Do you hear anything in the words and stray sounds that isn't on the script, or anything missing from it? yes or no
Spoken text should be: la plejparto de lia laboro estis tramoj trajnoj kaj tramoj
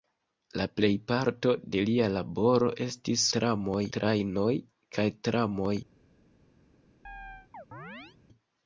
yes